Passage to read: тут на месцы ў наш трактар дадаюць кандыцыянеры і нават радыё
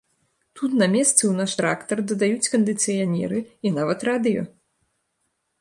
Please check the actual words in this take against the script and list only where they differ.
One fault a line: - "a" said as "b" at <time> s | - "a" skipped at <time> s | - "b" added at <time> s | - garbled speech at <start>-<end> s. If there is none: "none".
none